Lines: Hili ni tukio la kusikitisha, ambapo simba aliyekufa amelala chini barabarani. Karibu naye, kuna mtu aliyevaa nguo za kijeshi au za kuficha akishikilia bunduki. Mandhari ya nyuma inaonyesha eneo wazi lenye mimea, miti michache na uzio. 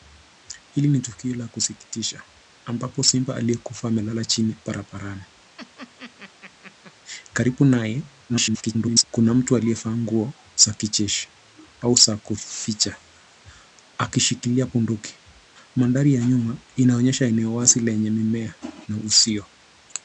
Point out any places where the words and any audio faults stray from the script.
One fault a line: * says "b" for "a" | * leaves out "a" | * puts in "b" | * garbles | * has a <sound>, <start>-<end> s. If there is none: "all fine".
* has a laugh, 5.6-6.9 s
* garbles
* leaves out "miti michache"